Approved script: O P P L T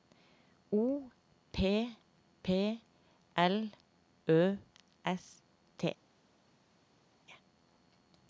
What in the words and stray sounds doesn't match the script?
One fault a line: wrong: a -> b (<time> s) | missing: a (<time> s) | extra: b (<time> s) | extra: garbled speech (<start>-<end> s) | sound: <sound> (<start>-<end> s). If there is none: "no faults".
extra: Ø S (4.3 s)